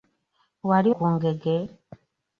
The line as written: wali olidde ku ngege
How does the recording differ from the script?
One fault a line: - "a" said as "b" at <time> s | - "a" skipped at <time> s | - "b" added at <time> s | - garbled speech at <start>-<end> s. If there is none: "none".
- "olidde" skipped at 0.9 s